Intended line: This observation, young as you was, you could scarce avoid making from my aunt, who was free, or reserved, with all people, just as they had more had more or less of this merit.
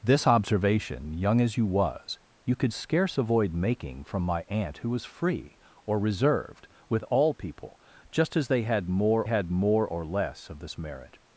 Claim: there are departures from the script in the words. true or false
false